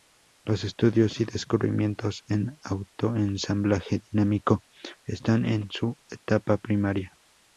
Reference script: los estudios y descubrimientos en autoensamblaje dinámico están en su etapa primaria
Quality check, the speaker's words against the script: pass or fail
pass